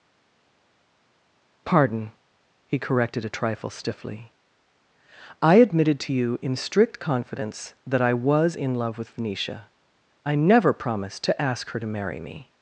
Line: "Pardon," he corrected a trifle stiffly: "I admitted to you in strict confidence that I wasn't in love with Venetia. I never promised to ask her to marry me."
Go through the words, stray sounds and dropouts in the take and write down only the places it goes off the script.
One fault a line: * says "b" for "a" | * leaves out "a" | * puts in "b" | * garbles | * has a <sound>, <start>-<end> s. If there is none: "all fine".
* says "was" for "wasn't"